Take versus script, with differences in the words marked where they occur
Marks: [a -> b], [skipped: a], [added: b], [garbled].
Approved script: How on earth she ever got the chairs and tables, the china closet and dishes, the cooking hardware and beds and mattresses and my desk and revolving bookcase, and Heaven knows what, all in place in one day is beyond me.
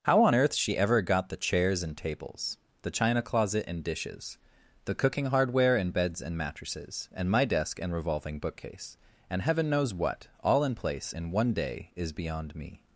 How on earth she ever got the chairs and tables, the china closet and dishes, the cooking hardware and beds and mattresses and my desk and revolving bookcase, and Heaven knows what, all in place in one day is beyond me.